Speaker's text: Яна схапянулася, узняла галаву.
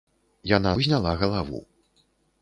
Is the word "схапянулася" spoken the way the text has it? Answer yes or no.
no